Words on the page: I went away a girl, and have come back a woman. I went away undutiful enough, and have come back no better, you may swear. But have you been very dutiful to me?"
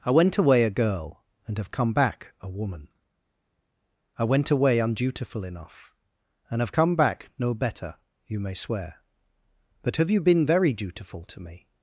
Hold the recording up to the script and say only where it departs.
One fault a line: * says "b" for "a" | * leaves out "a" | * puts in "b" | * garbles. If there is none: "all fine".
all fine